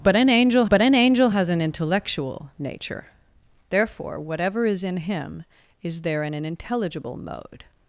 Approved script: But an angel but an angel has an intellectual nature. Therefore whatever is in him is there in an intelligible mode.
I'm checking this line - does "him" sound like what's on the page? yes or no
yes